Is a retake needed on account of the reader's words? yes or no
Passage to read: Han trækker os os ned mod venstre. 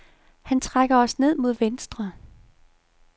yes